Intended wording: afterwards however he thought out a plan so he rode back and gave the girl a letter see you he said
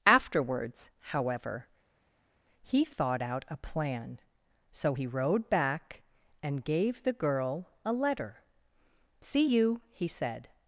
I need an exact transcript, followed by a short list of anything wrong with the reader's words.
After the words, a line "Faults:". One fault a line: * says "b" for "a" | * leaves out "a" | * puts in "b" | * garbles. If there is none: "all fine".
afterwards however he thought out a plan so he rode back and gave the girl a letter see you he said
Faults:
all fine